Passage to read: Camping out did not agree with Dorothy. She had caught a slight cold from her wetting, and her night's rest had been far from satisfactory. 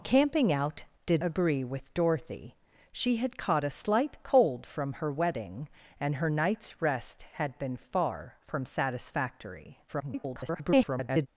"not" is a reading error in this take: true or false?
true